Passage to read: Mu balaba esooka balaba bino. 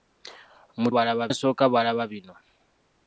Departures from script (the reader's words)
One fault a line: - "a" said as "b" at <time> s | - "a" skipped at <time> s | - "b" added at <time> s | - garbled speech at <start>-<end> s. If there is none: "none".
none